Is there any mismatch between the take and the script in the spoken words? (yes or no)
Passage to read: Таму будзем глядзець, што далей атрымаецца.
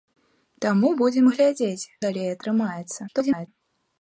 yes